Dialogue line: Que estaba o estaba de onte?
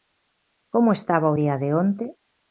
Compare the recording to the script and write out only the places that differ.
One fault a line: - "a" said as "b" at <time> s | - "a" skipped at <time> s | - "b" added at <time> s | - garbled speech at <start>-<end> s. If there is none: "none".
- "Que" said as "Como" at 0.7 s
- "estaba" said as "día" at 1.4 s